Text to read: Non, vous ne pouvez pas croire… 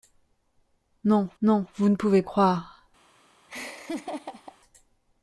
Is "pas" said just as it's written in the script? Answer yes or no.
no